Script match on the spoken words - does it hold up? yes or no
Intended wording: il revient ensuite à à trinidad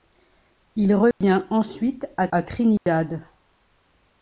yes